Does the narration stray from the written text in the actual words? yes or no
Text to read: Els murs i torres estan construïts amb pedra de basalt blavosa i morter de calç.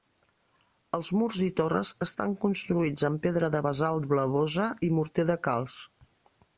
no